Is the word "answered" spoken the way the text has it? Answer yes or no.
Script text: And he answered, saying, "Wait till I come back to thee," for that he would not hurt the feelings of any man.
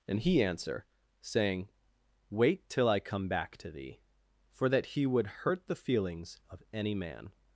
no